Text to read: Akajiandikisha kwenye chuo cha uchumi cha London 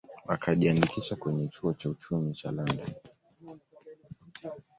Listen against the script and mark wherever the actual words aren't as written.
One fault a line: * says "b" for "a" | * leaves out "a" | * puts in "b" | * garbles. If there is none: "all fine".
all fine